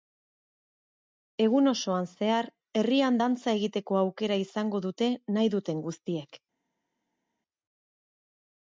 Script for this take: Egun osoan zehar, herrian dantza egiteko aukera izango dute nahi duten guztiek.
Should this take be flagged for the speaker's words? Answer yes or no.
no